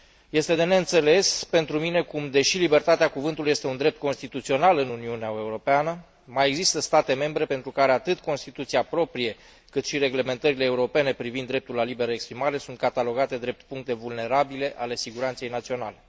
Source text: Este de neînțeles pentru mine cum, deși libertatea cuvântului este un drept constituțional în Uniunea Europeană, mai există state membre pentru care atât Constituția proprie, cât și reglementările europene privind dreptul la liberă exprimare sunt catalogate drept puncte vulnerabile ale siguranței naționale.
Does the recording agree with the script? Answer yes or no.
yes